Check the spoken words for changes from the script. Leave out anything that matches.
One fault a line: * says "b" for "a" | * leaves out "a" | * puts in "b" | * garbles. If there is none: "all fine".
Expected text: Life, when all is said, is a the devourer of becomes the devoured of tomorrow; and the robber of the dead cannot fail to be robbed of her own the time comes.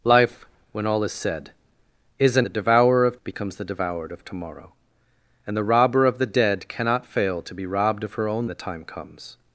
all fine